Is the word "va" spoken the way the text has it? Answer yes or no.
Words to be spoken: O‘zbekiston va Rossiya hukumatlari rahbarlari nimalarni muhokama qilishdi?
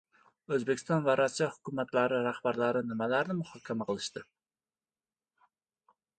yes